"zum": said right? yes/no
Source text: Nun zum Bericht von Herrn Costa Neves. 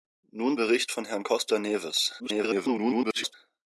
no